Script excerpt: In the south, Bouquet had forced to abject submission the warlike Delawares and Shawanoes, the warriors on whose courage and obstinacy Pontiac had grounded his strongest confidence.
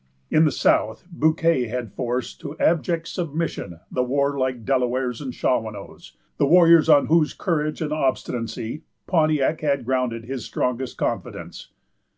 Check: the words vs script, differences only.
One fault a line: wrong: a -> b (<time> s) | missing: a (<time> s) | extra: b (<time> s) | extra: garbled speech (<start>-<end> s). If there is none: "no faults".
no faults